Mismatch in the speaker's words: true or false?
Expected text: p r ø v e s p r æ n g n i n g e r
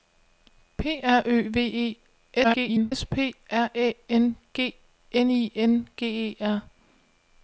true